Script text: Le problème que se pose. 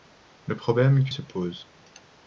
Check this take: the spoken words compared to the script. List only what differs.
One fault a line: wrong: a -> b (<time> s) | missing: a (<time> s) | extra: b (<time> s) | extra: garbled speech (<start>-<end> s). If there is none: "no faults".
no faults